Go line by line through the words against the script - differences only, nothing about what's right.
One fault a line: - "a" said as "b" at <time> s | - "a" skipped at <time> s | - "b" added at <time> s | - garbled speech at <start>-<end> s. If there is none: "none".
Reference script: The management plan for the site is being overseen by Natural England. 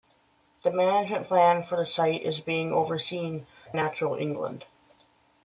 - "by" skipped at 3.5 s